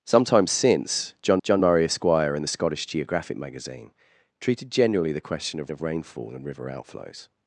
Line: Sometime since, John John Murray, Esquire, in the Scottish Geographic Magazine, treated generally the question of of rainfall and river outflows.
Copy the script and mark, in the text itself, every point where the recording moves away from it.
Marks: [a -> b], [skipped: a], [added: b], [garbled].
Sometime since, John John Murray, Esquire, in the Scottish Geographic Magazine, treated generally the question of of rainfall and river outflows.